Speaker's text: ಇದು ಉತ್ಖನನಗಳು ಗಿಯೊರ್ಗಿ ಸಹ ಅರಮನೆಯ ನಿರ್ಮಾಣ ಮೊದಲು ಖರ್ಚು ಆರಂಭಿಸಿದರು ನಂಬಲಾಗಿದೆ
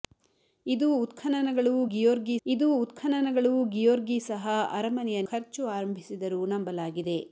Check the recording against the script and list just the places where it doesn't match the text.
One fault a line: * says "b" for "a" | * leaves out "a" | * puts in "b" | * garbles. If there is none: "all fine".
* puts in "ಇದು ಉತ್ಖನನಗಳು ಗಿಯೊರ್ಗಿ"
* leaves out "ನಿರ್ಮಾಣ ಮೊದಲು"